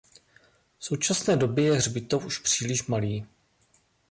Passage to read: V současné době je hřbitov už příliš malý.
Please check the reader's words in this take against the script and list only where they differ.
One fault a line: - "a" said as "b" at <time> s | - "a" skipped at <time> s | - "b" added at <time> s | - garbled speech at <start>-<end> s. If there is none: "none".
none